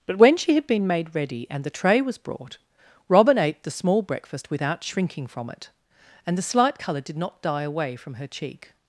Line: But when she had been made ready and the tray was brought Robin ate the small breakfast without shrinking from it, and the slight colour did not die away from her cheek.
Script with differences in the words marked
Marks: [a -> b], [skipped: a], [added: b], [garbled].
But when she had been made ready and the tray was brought Robin ate the small breakfast without shrinking from it, and the slight colour did not die away from her cheek.